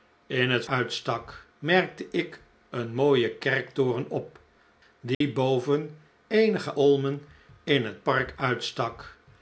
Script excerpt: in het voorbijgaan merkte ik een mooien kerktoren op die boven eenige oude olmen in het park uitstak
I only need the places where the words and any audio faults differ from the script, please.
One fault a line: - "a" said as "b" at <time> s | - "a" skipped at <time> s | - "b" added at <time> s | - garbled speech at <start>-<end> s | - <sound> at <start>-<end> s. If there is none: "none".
- "voorbijgaan" said as "uitstak" at 0.7 s
- dropout at 5.1-5.2 s
- "oude" skipped at 6.7 s